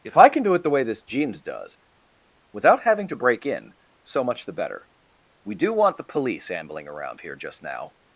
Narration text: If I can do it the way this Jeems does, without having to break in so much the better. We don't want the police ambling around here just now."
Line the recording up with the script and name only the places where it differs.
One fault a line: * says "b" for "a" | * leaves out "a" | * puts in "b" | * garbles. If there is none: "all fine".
* says "do" for "don't"